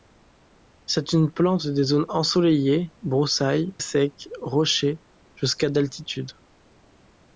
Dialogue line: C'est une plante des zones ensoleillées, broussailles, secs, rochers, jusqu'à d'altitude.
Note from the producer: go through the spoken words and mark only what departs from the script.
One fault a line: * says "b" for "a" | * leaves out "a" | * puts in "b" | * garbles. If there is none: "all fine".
all fine